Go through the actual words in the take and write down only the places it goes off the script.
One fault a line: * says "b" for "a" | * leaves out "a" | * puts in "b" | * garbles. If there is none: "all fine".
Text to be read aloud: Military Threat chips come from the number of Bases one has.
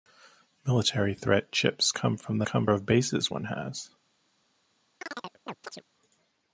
* says "come" for "number"